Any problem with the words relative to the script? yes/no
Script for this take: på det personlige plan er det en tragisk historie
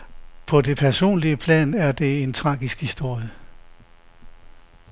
no